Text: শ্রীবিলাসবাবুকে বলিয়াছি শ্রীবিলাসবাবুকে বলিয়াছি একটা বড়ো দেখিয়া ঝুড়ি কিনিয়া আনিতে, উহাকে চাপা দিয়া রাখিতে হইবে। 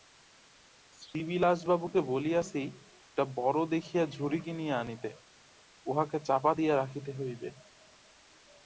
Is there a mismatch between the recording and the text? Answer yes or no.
yes